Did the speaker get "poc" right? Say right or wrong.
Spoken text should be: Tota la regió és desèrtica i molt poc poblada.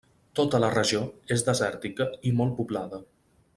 wrong